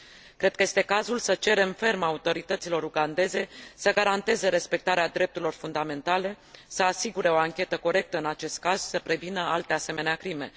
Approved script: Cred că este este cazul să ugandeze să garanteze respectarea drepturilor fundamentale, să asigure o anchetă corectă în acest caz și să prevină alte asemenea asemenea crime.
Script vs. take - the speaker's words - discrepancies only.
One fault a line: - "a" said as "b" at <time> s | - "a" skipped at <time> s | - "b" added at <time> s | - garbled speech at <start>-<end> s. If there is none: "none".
- "este" skipped at 0.8 s
- "cerem ferm autorităților" added at 1.3 s
- "asemenea" skipped at 10.2 s